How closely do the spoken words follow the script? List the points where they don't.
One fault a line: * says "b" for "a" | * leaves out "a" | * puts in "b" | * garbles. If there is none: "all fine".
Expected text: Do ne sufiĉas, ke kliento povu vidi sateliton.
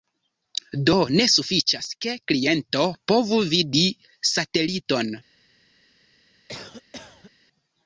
all fine